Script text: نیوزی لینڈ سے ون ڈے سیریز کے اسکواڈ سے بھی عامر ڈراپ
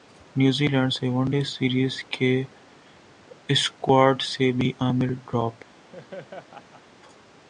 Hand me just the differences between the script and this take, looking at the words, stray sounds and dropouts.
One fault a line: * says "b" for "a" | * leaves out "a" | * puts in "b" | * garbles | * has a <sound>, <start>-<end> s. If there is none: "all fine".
* has a laugh, 5.9-6.8 s